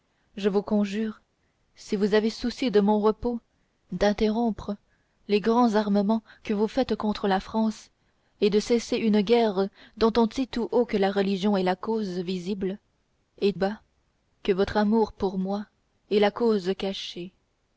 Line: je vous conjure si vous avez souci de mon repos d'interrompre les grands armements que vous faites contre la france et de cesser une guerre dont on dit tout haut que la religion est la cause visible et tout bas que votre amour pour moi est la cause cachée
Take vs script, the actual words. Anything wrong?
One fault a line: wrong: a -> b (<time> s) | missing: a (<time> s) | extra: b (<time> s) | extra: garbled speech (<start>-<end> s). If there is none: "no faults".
missing: tout (13.5 s)